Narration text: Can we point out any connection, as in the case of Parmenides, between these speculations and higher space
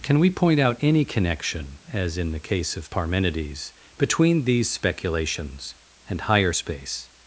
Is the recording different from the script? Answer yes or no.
no